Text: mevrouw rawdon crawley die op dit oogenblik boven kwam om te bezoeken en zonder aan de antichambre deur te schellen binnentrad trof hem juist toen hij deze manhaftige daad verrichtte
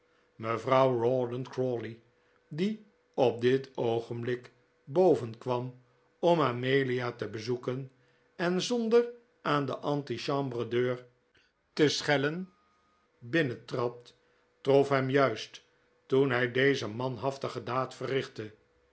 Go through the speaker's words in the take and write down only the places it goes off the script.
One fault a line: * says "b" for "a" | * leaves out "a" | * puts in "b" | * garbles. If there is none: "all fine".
* puts in "amelia"